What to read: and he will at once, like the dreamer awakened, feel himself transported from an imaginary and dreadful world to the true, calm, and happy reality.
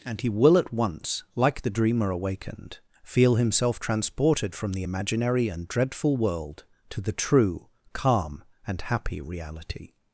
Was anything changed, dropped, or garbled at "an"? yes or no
yes